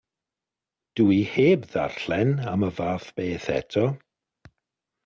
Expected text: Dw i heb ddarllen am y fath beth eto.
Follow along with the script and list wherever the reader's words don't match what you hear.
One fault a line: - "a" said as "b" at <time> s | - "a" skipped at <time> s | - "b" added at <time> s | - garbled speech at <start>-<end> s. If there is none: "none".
none